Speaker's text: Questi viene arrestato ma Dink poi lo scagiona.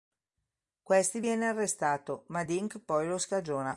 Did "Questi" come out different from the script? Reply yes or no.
no